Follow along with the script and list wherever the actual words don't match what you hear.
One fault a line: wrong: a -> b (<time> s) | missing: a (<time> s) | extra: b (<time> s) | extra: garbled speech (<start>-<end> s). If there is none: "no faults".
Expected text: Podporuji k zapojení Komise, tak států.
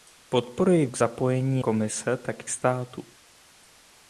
no faults